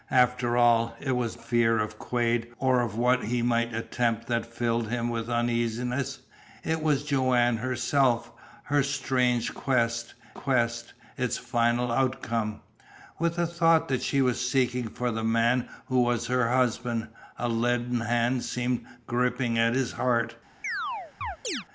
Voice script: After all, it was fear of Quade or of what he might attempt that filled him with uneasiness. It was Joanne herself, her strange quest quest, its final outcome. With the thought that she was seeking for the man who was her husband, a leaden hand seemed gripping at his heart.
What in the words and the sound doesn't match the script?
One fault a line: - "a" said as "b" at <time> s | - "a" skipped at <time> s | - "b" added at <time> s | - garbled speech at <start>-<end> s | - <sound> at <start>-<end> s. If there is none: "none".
- chirp at 20.6-21.7 s